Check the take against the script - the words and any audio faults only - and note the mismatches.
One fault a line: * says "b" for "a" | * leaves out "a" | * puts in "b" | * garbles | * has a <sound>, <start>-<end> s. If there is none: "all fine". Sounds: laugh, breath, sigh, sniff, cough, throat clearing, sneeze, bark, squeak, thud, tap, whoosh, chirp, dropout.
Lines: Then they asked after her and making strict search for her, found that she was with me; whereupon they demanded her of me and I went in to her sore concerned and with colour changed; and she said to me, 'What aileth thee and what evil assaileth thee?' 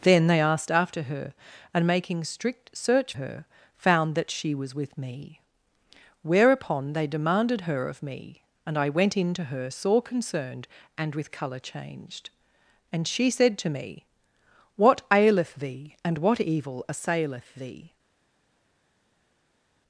* leaves out "for"